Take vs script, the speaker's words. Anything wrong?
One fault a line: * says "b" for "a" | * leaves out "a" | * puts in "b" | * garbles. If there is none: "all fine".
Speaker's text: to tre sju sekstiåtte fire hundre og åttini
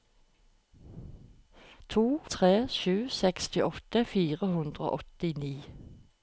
all fine